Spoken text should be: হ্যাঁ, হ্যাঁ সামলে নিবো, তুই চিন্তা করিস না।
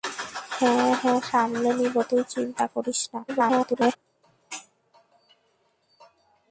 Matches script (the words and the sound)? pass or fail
fail